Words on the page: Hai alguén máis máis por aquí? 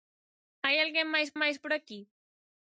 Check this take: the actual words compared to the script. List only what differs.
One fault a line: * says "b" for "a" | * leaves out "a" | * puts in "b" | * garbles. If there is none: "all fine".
all fine